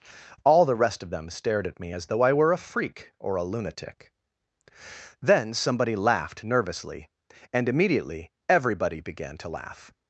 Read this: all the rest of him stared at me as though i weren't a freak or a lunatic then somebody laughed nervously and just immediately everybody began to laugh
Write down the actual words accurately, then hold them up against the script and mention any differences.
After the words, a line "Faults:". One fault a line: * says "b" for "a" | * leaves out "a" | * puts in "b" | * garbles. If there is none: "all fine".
all the rest of them stared at me as though i were a freak or a lunatic then somebody laughed nervously and immediately everybody began to laugh
Faults:
* says "them" for "him"
* says "were" for "weren't"
* leaves out "just"